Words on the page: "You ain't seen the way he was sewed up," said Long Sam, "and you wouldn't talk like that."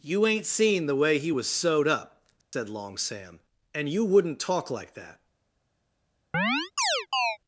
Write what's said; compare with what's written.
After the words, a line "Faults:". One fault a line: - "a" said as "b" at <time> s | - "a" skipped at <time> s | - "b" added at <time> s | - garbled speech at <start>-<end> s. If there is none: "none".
"You ain't seen the way he was sewed up," said Long Sam, "and you wouldn't talk like that."
Faults:
none